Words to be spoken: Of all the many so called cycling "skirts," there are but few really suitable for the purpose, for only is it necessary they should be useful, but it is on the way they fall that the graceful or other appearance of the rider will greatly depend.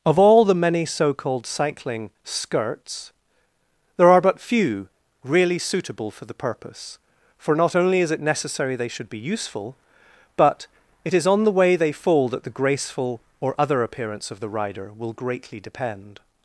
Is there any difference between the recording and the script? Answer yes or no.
yes